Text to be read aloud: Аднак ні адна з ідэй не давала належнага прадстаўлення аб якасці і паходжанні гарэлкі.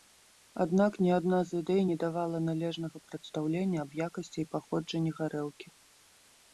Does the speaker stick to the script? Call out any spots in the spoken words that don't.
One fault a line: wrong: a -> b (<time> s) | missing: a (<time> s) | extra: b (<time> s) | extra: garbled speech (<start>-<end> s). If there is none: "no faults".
no faults